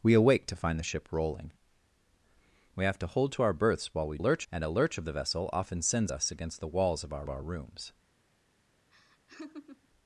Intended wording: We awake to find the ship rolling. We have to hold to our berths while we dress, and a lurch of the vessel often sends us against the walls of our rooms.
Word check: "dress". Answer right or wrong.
wrong